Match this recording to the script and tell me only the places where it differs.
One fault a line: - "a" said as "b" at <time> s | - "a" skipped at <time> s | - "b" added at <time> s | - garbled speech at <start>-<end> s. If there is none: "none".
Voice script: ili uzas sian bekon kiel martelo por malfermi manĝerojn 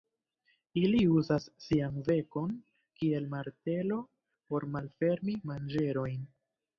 none